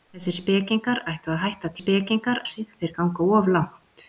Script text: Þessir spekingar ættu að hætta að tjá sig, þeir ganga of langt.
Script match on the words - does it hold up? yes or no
no